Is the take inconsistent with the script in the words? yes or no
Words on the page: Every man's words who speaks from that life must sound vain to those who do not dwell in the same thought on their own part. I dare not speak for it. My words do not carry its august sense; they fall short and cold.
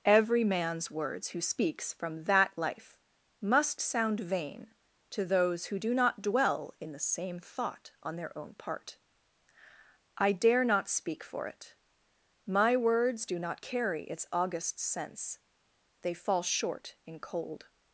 yes